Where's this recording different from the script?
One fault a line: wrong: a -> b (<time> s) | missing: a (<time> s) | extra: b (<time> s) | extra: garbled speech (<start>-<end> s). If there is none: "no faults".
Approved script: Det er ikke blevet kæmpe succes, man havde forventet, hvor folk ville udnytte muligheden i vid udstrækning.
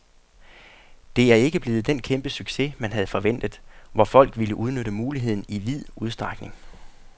extra: den (1.9 s)